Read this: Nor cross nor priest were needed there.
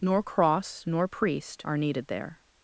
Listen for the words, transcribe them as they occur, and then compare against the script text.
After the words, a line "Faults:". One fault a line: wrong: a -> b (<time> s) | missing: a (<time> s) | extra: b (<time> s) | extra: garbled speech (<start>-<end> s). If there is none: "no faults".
Nor cross nor priest are needed there.
Faults:
wrong: were -> are (1.6 s)